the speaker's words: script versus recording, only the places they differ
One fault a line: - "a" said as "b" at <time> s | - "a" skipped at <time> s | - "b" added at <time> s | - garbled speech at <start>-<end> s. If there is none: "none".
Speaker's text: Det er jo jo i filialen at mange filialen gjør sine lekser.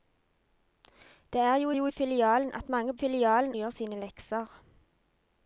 none